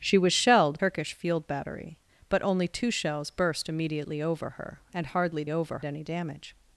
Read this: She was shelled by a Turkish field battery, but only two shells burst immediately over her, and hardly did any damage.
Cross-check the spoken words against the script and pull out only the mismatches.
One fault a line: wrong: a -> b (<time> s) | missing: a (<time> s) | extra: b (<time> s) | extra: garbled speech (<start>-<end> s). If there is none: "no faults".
missing: by a (0.8 s)
wrong: did -> over (5.5 s)